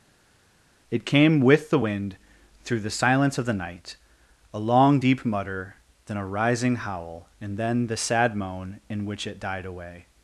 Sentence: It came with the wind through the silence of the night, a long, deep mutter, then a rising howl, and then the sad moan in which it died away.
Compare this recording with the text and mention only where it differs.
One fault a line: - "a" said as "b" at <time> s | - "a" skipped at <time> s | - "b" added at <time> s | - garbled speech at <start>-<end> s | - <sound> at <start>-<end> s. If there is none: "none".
none